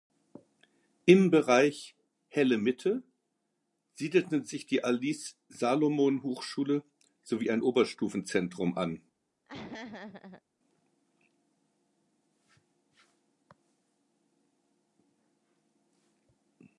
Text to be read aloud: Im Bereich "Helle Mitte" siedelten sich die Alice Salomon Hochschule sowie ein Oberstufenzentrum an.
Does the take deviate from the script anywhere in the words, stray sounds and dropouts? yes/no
yes